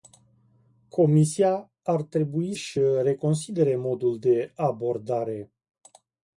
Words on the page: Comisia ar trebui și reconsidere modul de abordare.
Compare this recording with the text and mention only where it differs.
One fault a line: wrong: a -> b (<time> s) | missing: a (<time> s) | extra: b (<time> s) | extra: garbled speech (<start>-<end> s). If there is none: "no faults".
no faults